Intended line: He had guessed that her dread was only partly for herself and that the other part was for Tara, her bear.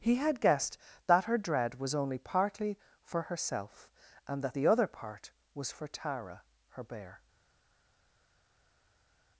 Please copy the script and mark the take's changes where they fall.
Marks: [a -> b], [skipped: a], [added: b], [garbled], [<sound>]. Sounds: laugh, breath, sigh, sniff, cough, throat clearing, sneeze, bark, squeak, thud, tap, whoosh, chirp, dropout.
He had guessed that her dread was only partly for herself and that the other part was for Tara, her bear.